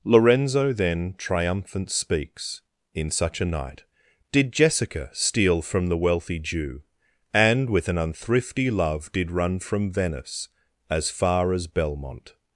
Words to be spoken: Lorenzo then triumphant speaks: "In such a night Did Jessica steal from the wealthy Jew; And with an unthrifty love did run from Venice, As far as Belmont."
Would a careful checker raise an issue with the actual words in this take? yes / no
no